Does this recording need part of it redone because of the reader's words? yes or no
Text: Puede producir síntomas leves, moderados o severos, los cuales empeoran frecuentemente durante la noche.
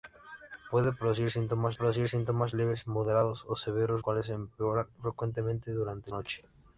yes